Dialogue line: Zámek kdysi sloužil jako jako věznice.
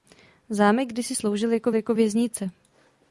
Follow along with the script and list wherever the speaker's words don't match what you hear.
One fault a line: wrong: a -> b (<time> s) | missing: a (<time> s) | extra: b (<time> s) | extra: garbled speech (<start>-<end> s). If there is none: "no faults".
no faults